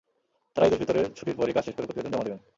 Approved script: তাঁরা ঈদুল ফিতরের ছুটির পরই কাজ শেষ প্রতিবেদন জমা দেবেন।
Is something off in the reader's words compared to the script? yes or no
yes